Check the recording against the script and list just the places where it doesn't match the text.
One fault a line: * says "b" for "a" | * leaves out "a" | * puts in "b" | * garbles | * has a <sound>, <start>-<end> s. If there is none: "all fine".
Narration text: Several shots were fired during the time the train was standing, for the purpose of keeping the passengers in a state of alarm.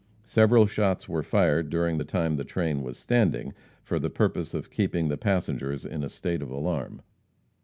all fine